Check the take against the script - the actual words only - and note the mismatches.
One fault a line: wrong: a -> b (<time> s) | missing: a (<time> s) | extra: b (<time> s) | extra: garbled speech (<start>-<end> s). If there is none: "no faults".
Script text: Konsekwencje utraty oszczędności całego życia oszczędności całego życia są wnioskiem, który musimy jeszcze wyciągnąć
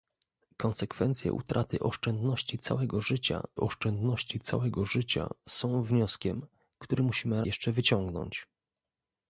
no faults